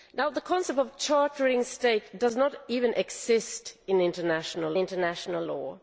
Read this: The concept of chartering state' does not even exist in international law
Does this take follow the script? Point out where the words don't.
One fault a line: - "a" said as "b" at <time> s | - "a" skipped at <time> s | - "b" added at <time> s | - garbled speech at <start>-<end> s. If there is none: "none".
- "international" added at 4.8 s